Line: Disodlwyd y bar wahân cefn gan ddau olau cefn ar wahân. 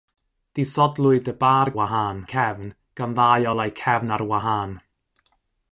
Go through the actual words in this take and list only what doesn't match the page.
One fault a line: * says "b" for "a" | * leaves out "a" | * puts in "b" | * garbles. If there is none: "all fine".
all fine